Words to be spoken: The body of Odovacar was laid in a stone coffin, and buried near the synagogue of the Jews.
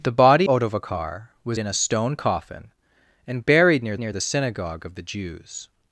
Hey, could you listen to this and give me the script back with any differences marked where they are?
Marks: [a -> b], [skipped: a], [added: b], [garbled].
The body [skipped: of] Odovacar was [skipped: laid] in a stone coffin, and buried near [added: near] the synagogue of the Jews.